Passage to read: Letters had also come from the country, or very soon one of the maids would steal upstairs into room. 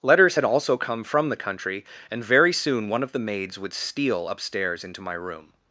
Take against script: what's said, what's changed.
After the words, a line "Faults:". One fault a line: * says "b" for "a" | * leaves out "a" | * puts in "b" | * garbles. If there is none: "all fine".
Letters had also come from the country, and very soon one of the maids would steal upstairs into my room.
Faults:
* says "and" for "or"
* puts in "my"